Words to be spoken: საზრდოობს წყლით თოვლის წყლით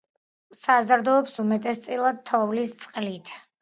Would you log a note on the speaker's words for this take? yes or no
yes